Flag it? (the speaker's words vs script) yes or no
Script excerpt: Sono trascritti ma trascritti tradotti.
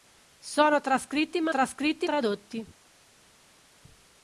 no